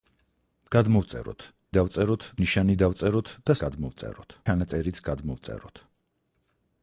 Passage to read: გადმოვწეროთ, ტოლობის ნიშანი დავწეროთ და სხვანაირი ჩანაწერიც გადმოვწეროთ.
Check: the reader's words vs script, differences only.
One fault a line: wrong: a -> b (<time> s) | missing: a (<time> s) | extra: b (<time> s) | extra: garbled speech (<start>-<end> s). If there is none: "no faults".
wrong: ტოლობის -> დავწეროთ (1.8 s)
wrong: სხვანაირი -> გადმოვწეროთ (3.6 s)